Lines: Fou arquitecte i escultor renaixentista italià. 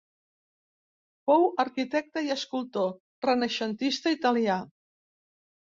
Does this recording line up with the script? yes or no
yes